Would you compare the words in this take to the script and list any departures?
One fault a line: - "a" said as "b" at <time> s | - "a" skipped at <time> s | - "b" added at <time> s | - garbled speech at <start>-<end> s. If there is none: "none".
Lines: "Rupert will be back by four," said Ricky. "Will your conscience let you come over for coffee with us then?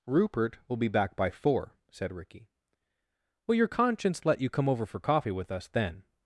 none